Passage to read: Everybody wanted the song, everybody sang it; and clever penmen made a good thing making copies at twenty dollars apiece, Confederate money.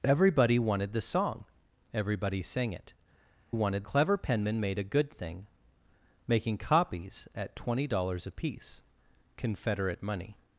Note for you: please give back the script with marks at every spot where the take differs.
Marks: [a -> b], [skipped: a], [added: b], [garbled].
Everybody wanted the song, everybody sang it; [and -> wanted] clever penmen made a good thing making copies at twenty dollars apiece, Confederate money.